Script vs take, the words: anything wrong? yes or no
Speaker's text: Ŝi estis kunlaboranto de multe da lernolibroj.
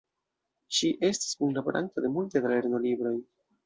no